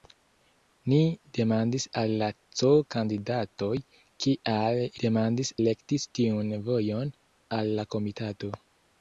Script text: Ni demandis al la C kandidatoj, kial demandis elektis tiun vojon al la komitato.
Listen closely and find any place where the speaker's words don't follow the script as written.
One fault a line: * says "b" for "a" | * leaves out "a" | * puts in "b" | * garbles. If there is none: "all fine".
all fine